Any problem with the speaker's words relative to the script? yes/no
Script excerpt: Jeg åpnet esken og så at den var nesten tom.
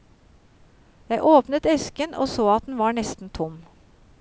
no